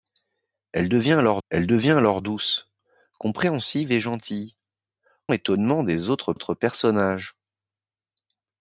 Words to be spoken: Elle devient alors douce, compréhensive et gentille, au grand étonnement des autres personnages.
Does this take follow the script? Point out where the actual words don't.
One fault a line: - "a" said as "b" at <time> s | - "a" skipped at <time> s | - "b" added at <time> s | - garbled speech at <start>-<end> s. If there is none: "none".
- "elle devient alors" added at 1.5 s
- "au grand" skipped at 4.6 s
- "autres" added at 6.3 s